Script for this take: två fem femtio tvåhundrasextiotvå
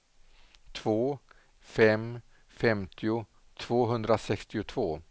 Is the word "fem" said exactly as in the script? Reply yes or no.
yes